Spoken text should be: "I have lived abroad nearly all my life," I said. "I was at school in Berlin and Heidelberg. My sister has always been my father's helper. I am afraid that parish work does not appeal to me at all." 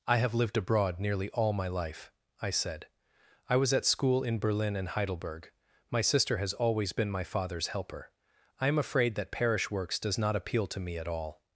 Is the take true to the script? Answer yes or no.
no